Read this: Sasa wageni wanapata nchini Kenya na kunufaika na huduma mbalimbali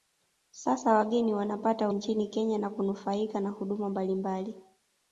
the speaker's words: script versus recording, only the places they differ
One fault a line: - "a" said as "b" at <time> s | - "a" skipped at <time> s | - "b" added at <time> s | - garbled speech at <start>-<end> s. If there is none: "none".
none